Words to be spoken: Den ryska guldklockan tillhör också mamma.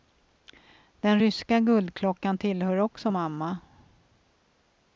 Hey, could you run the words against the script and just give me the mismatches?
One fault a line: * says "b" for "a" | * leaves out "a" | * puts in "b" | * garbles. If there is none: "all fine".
all fine